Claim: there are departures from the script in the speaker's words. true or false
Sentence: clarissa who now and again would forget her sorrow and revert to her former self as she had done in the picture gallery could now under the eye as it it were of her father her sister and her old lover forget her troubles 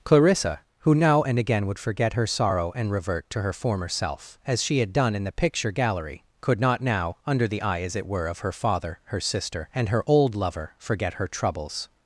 true